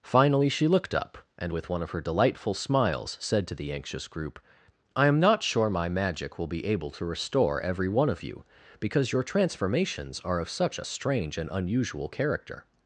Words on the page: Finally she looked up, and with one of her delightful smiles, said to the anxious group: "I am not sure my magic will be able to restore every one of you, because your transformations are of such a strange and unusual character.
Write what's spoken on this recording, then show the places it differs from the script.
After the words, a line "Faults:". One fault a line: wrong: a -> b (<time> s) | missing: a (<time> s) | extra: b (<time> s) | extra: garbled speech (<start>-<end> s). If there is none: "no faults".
Finally she looked up, and with one of her delightful smiles, said to the anxious group: "I am not sure my magic will be able to restore every one of you, because your transformations are of such a strange and unusual character.
Faults:
no faults